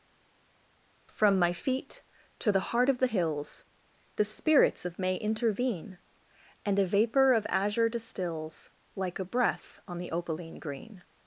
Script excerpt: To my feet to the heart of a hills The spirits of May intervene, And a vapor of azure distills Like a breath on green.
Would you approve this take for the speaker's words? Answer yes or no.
no